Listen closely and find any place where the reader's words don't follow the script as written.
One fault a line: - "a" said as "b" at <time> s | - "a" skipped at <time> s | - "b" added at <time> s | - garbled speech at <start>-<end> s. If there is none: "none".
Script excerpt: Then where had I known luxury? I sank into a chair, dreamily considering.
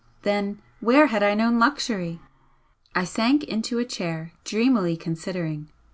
none